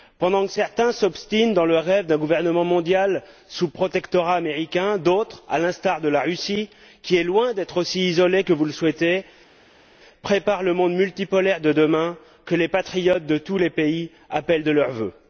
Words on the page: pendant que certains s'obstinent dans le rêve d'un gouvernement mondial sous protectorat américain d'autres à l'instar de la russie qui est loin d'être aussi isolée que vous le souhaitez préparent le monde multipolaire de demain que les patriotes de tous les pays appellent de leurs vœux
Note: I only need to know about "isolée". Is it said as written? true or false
true